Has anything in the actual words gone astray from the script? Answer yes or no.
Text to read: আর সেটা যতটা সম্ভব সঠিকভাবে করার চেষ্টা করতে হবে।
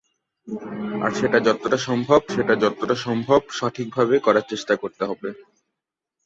yes